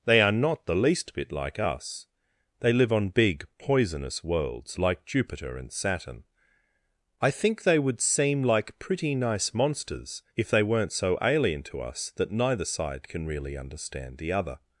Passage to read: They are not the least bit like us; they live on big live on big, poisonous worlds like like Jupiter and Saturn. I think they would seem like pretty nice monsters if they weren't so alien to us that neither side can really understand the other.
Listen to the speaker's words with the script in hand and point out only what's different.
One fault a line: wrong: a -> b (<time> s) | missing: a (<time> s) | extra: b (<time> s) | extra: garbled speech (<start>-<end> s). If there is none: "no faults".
missing: live on big (3.5 s)
missing: like (5.0 s)